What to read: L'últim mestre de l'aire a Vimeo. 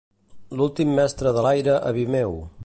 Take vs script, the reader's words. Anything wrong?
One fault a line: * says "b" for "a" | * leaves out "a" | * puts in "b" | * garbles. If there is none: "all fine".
all fine